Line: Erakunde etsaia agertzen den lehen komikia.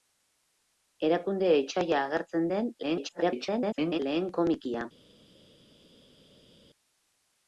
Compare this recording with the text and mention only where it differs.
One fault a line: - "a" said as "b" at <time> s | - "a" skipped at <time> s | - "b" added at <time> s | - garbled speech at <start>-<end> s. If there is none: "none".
- garbled speech at 2.8-4.0 s